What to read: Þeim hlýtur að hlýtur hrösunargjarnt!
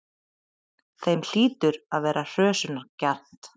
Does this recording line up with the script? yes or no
no